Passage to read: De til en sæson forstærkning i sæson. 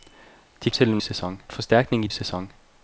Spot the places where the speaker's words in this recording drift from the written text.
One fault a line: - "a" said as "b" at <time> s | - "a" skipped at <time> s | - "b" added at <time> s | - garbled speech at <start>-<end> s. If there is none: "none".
none